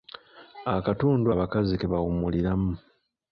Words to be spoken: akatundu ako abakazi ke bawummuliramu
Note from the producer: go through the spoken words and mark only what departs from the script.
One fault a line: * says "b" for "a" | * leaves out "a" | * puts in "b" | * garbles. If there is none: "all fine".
* leaves out "ako"